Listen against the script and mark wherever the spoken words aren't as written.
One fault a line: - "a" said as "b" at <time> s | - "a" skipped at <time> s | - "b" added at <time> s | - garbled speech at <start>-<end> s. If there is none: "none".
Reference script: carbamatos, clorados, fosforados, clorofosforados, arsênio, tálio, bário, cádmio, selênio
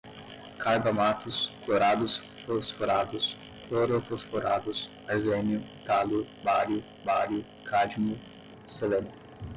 - "bário" added at 7.0 s